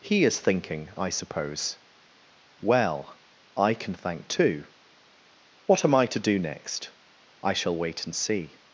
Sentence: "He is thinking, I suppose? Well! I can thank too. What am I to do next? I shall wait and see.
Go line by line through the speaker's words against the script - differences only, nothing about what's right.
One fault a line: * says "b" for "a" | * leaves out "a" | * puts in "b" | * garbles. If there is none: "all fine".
all fine